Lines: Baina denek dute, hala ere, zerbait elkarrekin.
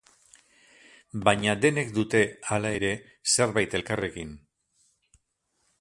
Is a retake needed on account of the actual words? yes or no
no